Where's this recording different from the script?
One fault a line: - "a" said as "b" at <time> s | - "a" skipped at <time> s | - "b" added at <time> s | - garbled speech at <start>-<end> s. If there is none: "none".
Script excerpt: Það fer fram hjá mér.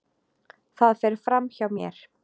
none